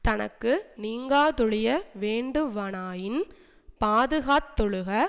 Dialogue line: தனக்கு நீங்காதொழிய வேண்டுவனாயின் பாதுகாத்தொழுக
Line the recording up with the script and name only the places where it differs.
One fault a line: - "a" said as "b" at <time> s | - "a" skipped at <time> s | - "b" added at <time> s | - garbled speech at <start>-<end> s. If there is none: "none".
none